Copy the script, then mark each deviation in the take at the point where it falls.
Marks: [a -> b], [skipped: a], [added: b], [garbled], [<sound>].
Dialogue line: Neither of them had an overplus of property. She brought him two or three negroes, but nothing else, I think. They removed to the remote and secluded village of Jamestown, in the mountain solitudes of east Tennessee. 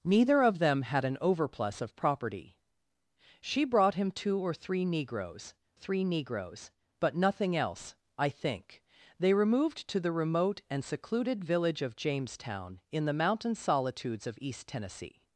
Neither of them had an overplus of property. She brought him two or three negroes, [added: three negroes] but nothing else, I think. They removed to the remote and secluded village of Jamestown, in the mountain solitudes of east Tennessee.